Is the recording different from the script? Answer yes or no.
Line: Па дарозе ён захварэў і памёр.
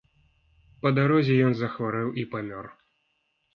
no